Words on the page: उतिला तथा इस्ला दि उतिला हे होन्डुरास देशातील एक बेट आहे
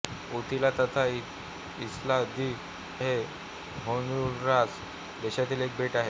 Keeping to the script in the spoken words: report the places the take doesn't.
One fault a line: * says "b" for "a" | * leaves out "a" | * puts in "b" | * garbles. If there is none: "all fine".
* leaves out "उतिला"